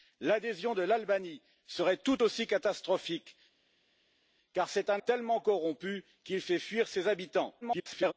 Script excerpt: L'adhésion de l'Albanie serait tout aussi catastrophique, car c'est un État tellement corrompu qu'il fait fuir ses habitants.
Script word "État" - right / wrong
wrong